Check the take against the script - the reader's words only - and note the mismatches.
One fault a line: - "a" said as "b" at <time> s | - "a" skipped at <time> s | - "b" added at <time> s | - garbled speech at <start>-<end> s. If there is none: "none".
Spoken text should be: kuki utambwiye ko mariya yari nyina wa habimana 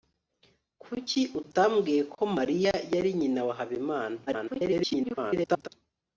- garbled speech at 4.3-5.7 s